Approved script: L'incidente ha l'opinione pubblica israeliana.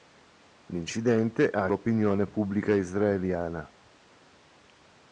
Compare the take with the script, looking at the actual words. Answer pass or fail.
pass